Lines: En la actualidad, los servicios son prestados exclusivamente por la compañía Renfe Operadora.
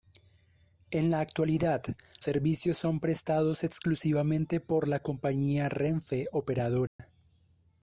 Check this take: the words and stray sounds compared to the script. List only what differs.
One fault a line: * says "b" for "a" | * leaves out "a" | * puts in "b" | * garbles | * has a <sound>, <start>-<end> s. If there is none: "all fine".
* leaves out "los"
* has a dropout, 6.9-7.0 s